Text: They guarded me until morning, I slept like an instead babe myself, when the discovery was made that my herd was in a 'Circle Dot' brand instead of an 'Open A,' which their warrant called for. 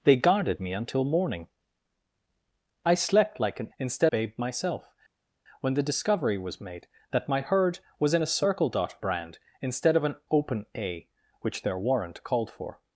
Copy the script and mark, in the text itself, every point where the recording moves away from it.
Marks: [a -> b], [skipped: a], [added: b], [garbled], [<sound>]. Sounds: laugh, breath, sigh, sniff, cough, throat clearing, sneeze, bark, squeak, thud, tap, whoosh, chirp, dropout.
They guarded me until morning, I slept like an instead babe myself, when the discovery was made that my herd was in a 'Circle Dot' brand instead of an 'Open A,' which their warrant called for.